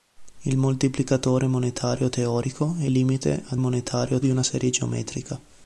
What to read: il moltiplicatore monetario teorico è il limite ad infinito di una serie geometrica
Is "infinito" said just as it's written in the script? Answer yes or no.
no